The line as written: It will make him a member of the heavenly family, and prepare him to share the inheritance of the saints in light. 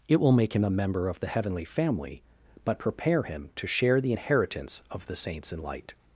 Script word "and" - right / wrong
wrong